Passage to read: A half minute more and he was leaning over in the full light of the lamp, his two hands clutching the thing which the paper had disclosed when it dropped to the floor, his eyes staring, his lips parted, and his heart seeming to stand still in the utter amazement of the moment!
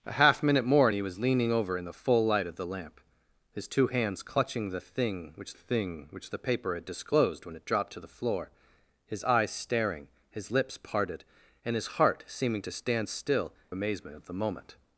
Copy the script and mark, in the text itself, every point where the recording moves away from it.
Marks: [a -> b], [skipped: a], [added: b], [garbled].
A half minute more and he was leaning over in the full light of the lamp, his two hands clutching the thing which [added: thing which] the paper had disclosed when it dropped to the floor, his eyes staring, his lips parted, and his heart seeming to stand still [skipped: in the utter] amazement of the moment!